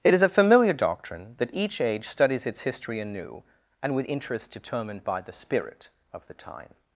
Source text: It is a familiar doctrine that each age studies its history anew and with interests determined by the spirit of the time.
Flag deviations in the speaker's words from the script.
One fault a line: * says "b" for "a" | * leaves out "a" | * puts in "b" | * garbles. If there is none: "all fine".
all fine